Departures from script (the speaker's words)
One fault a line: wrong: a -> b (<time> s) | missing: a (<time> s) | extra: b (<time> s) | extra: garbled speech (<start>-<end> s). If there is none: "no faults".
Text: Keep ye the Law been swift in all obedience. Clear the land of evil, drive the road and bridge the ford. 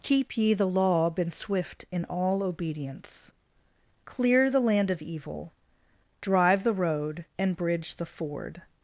no faults